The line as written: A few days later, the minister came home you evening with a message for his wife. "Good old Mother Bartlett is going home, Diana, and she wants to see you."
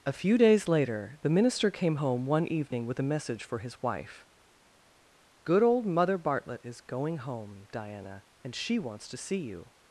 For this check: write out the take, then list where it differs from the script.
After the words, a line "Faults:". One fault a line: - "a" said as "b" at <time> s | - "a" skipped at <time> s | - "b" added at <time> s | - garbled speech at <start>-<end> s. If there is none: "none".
A few days later, the minister came home one evening with a message for his wife. "Good old Mother Bartlett is going home, Diana, and she wants to see you."
Faults:
- "you" said as "one" at 2.3 s